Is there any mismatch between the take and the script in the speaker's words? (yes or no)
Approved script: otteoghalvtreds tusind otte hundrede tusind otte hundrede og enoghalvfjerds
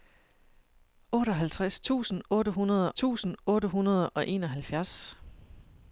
no